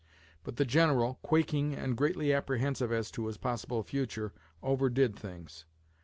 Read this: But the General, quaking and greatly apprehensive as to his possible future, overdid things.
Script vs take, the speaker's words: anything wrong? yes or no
no